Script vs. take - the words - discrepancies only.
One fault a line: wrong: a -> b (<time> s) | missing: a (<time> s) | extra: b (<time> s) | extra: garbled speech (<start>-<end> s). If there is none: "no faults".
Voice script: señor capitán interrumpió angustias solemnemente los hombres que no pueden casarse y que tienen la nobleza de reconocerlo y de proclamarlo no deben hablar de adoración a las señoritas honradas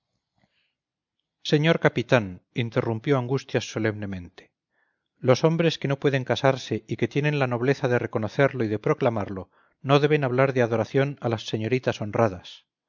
no faults